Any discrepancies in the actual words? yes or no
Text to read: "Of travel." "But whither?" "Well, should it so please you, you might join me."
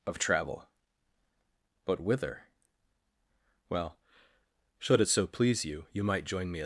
no